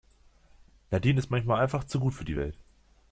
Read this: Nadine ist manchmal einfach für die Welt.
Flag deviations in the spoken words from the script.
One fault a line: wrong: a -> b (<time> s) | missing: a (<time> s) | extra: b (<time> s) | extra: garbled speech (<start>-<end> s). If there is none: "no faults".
extra: zu gut (1.8 s)